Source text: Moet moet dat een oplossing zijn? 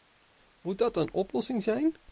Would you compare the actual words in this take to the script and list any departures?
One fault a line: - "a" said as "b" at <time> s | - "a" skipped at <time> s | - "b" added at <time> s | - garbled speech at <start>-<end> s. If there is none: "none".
- "moet" skipped at 0.8 s